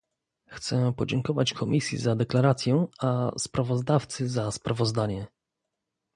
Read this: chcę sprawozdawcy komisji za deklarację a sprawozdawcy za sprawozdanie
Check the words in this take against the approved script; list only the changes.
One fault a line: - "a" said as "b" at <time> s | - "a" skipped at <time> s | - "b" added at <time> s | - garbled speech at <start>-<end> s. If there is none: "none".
- "sprawozdawcy" said as "podziękować" at 0.9 s